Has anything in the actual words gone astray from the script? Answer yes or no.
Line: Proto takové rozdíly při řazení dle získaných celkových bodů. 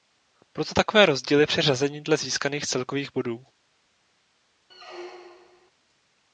no